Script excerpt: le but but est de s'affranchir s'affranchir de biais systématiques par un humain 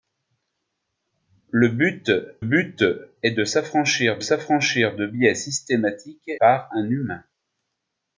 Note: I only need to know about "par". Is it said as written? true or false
true